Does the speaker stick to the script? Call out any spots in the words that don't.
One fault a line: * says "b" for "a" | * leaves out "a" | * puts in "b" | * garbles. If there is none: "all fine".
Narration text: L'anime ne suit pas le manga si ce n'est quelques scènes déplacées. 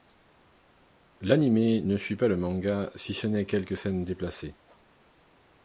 all fine